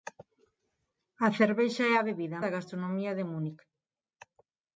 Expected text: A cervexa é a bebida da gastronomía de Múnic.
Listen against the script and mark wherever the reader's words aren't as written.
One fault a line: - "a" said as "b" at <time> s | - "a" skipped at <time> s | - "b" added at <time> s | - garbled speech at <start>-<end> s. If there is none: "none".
none